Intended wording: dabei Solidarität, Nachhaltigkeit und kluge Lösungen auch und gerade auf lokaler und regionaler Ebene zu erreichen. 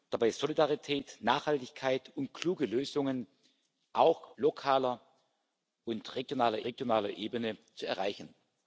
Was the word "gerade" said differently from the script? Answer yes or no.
yes